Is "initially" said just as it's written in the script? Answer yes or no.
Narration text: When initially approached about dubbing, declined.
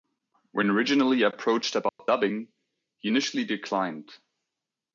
no